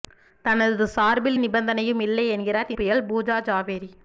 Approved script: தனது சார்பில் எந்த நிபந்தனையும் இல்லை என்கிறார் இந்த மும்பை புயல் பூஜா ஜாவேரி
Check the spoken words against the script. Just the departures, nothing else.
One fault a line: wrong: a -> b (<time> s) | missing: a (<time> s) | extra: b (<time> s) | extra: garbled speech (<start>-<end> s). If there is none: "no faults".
missing: எந்த (1.4 s)
missing: இந்த மும்பை (2.7 s)